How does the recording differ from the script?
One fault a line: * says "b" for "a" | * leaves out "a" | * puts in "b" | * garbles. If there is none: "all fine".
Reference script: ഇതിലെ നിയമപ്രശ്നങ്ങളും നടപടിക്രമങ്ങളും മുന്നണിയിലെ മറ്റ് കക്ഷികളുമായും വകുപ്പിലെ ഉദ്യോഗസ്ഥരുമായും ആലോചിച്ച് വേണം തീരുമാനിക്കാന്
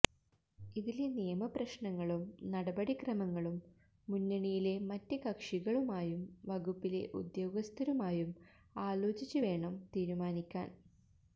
all fine